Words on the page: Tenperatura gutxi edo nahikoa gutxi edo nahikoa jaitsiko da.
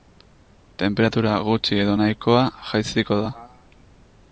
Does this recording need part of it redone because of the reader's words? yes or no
yes